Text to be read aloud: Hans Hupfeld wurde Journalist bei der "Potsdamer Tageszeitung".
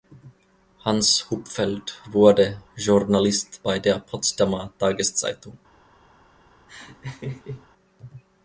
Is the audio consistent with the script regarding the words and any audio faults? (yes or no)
no